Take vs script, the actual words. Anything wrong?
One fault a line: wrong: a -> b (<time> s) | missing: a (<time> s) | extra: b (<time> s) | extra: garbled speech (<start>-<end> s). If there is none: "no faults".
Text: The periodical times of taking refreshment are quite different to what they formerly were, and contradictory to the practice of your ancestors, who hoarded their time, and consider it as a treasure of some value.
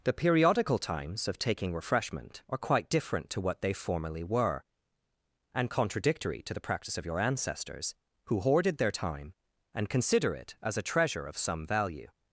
no faults